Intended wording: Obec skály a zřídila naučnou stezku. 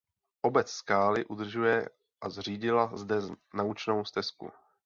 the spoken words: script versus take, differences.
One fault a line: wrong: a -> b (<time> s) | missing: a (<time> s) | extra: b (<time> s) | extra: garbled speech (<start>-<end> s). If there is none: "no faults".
extra: udržuje (1.2 s)
extra: zde (2.9 s)